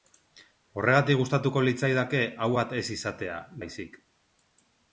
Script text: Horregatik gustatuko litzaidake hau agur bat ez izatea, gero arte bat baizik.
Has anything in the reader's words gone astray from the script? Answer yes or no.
yes